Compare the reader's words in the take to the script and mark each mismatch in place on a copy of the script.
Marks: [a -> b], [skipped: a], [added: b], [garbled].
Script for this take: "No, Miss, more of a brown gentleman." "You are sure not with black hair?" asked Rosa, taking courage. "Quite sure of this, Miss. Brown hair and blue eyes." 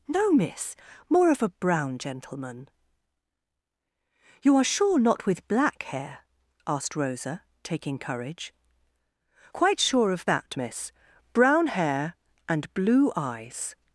"No, Miss, more of a brown gentleman." "You are sure not with black hair?" asked Rosa, taking courage. "Quite sure of [this, -> that] Miss. Brown hair and blue eyes."